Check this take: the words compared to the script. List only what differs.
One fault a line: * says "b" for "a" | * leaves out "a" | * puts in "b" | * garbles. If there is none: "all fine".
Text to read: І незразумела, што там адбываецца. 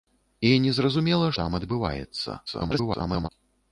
* leaves out "што"
* garbles